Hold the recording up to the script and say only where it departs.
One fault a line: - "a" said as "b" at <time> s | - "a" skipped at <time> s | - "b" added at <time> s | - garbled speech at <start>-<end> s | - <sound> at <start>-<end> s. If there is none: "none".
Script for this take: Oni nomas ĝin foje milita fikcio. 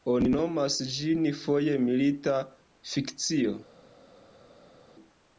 none